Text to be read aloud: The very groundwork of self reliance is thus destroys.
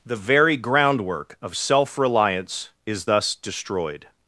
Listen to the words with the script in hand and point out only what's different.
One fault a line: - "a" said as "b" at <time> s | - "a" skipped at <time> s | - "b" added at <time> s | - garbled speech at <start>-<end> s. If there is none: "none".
- "destroys" said as "destroyed" at 3.3 s